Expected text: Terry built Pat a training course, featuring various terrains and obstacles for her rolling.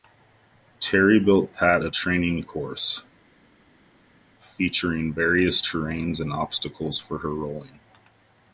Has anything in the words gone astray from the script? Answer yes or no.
no